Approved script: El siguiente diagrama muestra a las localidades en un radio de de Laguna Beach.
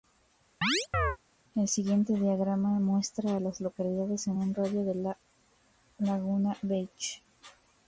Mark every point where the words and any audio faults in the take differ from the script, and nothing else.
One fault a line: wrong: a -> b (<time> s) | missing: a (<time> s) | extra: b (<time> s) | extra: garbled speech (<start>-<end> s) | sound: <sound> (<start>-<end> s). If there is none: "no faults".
sound: chirp (0.6-1.2 s)